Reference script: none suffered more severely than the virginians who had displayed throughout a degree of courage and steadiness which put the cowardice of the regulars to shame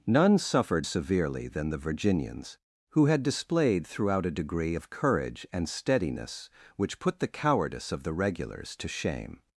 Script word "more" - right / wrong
wrong